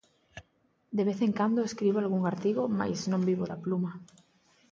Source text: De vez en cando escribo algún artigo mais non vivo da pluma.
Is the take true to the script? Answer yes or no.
yes